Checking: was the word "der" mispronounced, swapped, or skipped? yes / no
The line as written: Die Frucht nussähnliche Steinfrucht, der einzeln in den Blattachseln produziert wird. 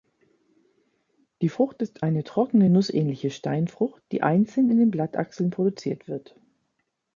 yes